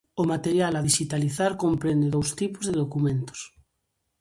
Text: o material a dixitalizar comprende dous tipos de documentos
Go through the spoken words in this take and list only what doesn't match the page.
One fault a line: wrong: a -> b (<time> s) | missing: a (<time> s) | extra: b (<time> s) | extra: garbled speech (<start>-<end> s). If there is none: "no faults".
no faults